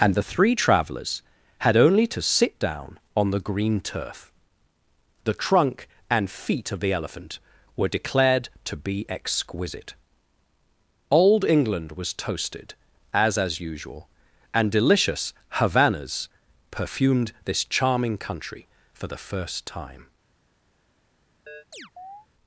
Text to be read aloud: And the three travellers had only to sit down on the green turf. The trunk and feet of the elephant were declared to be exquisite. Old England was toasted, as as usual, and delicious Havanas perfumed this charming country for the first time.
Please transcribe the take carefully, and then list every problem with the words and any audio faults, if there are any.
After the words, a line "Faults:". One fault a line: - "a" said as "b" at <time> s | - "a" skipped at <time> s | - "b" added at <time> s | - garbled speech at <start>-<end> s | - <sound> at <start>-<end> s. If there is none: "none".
And the three travellers had only to sit down on the green turf. The trunk and feet of the elephant were declared to be exquisite. Old England was toasted, as as usual, and delicious Havanas perfumed this charming country for the first time.
Faults:
- chirp at 21.5-22.3 s